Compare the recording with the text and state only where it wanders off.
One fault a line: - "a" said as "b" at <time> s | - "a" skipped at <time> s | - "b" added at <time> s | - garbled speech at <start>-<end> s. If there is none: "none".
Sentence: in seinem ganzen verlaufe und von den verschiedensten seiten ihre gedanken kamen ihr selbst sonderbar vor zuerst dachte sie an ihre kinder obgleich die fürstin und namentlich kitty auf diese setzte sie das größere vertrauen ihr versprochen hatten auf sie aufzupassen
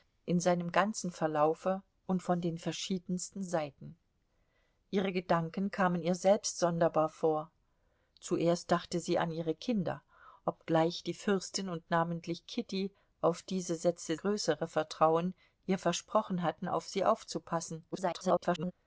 - "sie das" skipped at 14.1 s
- garbled speech at 17.9-18.7 s